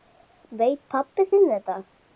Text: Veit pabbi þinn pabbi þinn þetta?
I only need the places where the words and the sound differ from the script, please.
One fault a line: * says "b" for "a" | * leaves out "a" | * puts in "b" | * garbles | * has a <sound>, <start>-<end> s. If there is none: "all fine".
* leaves out "pabbi þinn"